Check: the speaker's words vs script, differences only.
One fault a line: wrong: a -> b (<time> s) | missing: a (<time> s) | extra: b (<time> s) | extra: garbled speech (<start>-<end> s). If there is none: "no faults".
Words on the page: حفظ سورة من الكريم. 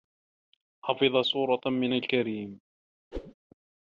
no faults